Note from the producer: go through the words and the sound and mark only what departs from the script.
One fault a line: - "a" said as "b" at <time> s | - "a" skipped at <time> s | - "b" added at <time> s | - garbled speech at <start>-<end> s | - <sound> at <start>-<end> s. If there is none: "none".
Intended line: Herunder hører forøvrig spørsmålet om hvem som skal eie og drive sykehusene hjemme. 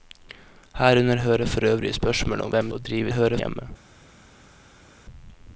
- "som skal eie" skipped at 2.7 s
- "sykehusene" said as "hører" at 3.1 s